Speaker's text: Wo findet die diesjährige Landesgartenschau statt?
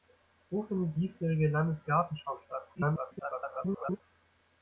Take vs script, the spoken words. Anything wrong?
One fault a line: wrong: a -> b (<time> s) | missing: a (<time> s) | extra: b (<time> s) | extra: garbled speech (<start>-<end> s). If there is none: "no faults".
missing: die (0.9 s)
extra: garbled speech (2.7-4.0 s)